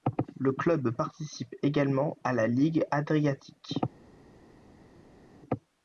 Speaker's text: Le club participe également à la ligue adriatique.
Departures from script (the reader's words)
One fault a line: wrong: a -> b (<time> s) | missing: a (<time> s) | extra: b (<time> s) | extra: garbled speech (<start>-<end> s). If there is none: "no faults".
no faults